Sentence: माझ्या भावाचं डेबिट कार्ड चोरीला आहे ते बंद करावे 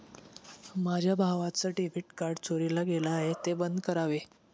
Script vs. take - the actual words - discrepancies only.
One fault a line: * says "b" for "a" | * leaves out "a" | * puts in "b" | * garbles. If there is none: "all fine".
* puts in "गेलं"